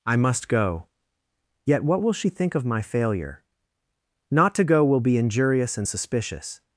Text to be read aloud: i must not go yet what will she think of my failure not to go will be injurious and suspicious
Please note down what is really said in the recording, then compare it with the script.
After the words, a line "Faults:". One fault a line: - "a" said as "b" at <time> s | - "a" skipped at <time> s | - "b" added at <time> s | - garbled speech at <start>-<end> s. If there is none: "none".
i must go yet what will she think of my failure not to go will be injurious and suspicious
Faults:
- "not" skipped at 0.5 s